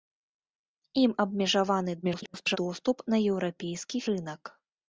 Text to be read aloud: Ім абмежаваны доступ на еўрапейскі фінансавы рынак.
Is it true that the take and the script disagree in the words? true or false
true